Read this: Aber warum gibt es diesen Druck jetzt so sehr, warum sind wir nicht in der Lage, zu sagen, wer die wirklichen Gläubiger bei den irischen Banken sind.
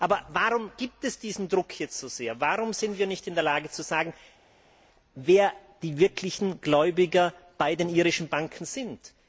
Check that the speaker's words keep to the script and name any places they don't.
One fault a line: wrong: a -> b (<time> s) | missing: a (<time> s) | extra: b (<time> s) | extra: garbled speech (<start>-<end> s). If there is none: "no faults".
no faults